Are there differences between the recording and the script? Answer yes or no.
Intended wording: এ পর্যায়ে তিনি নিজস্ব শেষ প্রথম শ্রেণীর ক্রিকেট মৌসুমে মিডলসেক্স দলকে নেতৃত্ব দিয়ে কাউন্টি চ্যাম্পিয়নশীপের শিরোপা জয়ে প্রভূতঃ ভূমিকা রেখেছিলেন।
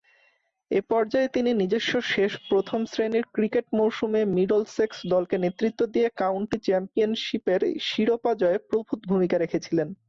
no